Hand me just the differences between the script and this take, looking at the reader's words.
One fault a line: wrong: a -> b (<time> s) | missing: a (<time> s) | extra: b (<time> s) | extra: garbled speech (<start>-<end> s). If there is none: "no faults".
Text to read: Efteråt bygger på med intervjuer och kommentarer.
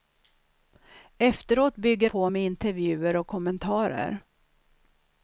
no faults